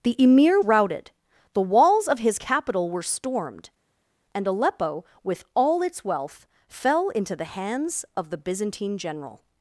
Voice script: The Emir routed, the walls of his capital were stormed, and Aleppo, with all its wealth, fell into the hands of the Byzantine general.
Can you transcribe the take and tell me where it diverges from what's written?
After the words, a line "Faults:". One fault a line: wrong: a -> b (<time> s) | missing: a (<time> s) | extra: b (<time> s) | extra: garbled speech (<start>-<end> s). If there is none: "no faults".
The Emir routed, the walls of his capital were stormed, and Aleppo, with all its wealth, fell into the hands of the Byzantine general.
Faults:
no faults